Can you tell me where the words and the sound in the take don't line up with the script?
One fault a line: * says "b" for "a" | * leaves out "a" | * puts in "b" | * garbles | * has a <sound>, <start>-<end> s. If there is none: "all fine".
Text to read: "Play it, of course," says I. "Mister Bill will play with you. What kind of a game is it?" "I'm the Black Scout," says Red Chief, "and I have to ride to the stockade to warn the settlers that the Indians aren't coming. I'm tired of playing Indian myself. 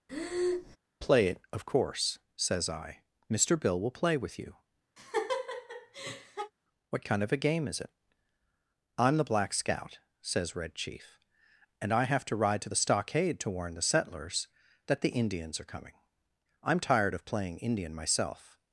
* has a breath, 0.1-0.8 s
* has a laugh, 5.0-6.5 s
* says "are" for "aren't"